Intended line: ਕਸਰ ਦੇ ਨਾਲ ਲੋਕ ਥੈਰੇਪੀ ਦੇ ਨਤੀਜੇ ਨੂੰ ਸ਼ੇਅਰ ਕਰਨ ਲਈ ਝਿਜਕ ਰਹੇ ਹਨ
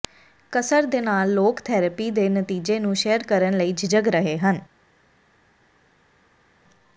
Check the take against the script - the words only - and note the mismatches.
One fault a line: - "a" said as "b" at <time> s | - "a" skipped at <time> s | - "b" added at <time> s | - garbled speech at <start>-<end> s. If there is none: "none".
none